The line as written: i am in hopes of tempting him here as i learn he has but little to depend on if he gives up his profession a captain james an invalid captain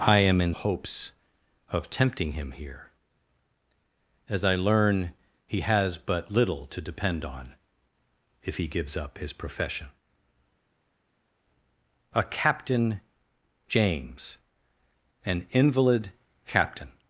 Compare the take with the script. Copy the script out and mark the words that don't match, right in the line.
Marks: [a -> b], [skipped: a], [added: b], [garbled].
i am in hopes of tempting him here as i learn he has but little to depend on if he gives up his profession a captain james an invalid captain